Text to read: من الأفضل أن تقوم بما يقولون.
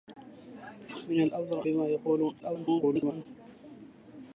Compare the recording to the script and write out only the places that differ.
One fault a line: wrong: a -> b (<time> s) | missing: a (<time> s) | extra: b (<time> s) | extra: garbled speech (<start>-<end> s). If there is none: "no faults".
missing: أن تقوم (1.6 s)
extra: garbled speech (2.4-3.3 s)